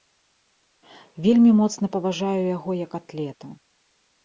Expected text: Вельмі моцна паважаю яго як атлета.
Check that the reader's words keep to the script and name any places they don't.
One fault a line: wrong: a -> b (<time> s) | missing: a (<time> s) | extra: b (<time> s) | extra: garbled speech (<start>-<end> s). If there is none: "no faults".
no faults